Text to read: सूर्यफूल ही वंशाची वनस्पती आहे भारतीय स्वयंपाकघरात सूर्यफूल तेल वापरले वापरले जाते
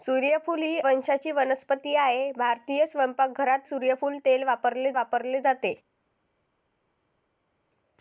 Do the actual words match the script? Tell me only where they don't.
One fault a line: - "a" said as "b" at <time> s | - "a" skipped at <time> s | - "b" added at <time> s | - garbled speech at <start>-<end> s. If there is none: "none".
none